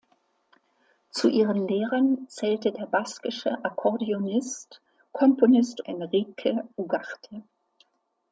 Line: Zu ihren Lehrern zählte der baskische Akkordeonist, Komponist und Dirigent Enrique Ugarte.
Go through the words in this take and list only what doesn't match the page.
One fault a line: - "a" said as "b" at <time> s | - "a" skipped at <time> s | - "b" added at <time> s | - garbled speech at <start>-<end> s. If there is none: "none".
- "und Dirigent" skipped at 5.8 s